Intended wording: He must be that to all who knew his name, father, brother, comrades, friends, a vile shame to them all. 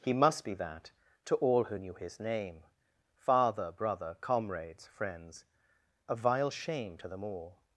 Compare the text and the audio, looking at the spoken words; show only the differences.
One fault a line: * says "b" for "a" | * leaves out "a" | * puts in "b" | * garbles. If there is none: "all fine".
all fine